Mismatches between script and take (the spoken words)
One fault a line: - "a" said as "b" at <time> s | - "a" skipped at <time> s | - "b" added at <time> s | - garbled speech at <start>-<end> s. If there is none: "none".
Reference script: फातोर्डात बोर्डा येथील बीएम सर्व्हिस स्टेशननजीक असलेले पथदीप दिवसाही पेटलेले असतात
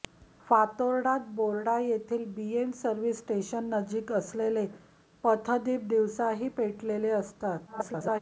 - garbled speech at 7.7-8.2 s